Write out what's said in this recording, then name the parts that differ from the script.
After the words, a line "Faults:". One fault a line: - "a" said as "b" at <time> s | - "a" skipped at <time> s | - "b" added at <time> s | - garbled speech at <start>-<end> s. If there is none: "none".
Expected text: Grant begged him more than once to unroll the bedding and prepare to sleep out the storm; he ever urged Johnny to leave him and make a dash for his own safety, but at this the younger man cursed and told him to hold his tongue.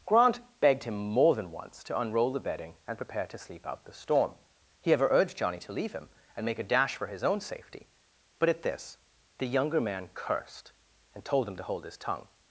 Grant begged him more than once to unroll the bedding and prepare to sleep out the storm; he ever urged Johnny to leave him and make a dash for his own safety, but at this the younger man cursed and told him to hold his tongue.
Faults:
none